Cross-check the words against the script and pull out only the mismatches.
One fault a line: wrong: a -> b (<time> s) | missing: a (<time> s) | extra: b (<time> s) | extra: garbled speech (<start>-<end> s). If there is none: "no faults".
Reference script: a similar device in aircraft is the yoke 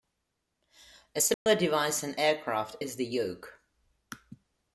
no faults